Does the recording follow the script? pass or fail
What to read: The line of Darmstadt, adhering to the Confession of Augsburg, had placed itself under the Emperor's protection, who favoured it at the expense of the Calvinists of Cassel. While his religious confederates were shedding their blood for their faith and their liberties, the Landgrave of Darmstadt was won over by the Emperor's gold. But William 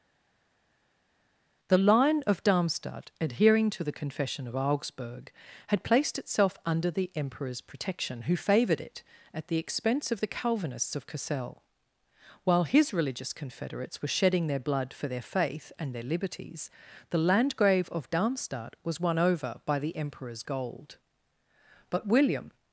pass